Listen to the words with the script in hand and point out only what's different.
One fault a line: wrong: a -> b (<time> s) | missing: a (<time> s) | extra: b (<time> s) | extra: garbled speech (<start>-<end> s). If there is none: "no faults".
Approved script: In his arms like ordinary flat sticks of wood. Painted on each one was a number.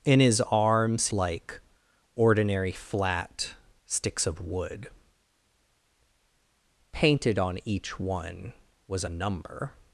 no faults